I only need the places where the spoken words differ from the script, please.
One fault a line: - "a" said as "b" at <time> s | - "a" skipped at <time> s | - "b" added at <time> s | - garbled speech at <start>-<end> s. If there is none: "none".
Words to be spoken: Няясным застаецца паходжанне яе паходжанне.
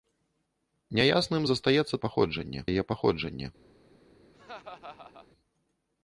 none